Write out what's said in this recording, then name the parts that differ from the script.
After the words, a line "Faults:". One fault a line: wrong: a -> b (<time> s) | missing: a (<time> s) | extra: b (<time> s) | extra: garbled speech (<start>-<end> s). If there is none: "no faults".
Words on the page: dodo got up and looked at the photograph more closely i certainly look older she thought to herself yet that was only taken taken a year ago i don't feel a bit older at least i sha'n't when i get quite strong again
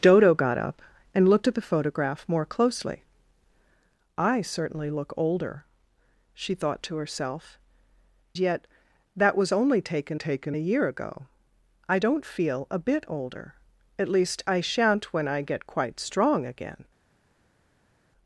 dodo got up and looked at the photograph more closely i certainly look older she thought to herself yet that was only taken taken a year ago i don't feel a bit older at least i sha'n't when i get quite strong again
Faults:
no faults